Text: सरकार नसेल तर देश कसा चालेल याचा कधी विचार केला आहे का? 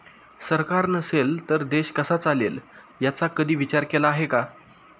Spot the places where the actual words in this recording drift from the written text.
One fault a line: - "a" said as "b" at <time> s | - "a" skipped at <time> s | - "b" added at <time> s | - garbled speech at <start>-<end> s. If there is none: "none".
none